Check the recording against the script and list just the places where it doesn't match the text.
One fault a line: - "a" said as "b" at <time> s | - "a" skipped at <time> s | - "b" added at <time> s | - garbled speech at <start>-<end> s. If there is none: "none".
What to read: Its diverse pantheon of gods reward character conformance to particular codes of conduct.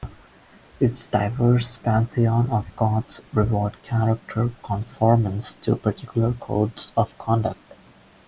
none